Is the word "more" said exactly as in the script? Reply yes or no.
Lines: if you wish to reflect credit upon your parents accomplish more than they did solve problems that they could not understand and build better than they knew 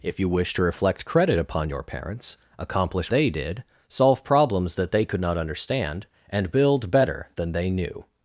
no